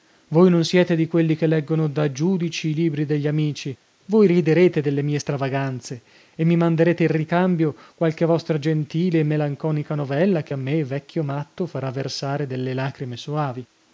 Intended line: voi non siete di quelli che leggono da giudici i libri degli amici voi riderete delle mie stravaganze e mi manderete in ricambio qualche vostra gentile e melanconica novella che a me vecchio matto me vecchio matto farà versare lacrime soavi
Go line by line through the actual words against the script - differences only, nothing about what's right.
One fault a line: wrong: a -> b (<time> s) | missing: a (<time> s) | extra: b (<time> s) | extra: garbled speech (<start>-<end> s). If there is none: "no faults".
missing: me vecchio matto (11.7 s)
extra: delle (12.5 s)